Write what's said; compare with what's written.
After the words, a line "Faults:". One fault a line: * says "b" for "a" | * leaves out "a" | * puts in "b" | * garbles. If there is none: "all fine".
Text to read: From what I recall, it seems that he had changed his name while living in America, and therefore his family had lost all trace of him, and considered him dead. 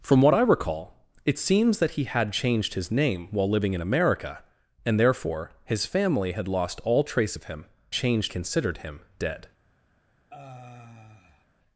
From what I recall, it seems that he had changed his name while living in America, and therefore his family had lost all trace of him, changed considered him dead.
Faults:
* says "changed" for "and"